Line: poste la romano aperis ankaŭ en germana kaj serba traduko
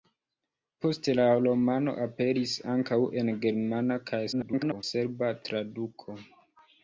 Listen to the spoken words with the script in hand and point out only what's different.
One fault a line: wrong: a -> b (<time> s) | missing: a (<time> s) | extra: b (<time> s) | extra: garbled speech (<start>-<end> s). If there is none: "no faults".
extra: garbled speech (4.3-4.8 s)